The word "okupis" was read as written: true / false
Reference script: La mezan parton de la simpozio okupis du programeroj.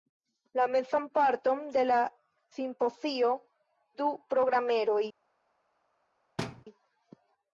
false